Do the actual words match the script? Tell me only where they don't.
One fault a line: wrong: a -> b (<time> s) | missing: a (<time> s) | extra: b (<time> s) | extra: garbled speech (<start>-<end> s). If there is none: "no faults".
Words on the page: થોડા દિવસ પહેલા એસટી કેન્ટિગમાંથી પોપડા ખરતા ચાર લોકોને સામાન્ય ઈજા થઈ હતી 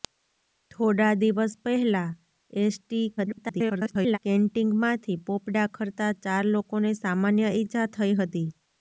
extra: garbled speech (3.2-4.2 s)